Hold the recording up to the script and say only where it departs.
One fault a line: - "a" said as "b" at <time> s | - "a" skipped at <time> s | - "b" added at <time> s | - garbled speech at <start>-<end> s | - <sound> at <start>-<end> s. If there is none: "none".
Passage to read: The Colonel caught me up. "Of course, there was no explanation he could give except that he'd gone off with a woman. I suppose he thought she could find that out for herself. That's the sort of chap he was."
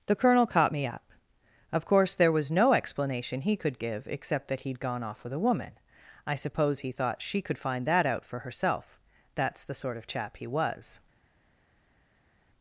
none